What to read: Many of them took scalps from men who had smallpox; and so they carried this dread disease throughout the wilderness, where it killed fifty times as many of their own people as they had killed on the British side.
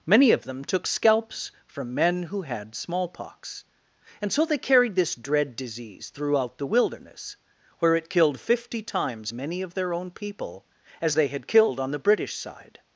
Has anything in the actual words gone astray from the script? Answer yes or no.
yes